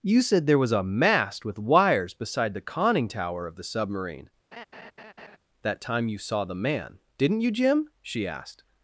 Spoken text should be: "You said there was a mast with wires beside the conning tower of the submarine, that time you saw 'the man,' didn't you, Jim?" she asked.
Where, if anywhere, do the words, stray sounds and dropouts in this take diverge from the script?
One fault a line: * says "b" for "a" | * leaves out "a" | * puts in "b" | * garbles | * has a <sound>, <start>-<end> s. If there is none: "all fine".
* has a laugh, 4.5-5.4 s